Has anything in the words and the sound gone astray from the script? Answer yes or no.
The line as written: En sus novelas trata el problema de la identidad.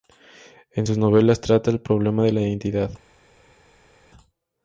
no